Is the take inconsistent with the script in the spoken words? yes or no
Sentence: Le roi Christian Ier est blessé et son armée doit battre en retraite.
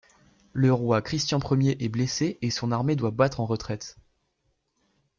no